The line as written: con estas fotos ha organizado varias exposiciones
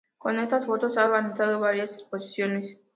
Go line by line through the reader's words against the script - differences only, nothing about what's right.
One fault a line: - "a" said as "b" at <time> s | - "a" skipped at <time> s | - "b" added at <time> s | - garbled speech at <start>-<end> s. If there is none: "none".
none